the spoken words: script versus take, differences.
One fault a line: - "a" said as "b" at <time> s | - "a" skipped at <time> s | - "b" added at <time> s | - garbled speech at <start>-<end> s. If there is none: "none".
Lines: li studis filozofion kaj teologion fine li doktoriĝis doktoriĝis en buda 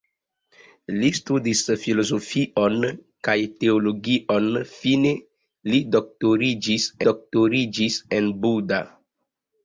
none